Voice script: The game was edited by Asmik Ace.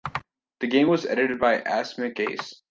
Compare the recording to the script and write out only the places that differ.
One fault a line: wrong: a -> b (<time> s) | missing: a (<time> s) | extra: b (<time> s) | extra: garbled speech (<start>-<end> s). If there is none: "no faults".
no faults